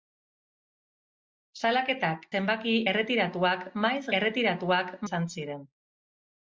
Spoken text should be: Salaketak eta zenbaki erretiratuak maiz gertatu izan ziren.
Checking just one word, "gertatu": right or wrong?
wrong